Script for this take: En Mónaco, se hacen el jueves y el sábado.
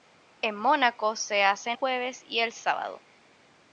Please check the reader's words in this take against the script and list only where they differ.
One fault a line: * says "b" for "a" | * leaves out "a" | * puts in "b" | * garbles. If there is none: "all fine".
* leaves out "el"